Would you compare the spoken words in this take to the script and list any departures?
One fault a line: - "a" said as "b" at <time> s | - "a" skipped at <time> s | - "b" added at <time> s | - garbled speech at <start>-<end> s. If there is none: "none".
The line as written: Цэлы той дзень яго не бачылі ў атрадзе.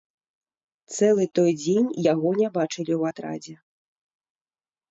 none